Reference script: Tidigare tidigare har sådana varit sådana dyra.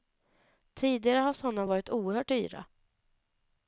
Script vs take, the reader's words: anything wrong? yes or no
yes